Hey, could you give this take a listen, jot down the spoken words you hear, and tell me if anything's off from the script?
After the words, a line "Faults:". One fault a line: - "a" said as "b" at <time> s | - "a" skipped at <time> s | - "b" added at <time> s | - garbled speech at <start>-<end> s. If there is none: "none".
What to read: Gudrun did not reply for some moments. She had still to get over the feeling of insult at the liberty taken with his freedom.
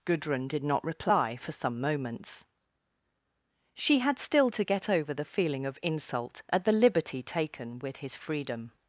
Gudrun did not reply for some moments. She had still to get over the feeling of insult at the liberty taken with his freedom.
Faults:
none